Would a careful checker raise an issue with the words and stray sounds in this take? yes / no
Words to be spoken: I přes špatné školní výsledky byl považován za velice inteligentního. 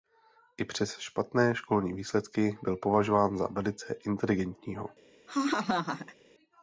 yes